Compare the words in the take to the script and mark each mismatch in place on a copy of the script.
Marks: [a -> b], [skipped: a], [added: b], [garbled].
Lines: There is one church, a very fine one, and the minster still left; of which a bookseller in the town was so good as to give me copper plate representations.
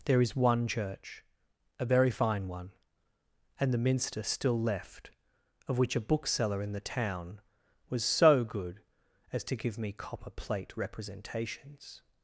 There is one church, a very fine one, and the minster still left; of which a bookseller in the town was so good as to give me copper plate representations.